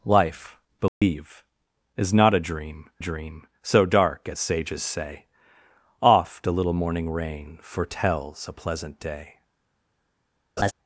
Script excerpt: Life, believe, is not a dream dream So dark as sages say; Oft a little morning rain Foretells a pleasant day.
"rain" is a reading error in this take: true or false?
false